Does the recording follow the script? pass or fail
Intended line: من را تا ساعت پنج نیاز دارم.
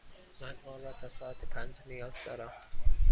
fail